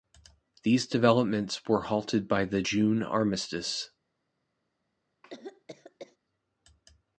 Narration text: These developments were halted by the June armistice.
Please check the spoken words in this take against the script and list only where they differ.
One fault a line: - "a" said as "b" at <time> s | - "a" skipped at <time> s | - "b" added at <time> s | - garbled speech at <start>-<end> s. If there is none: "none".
none